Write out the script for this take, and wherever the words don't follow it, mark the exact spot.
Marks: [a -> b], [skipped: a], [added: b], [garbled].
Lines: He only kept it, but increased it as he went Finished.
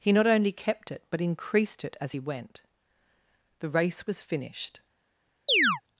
He [added: not] only kept it, but increased it as he went [added: The race was] Finished.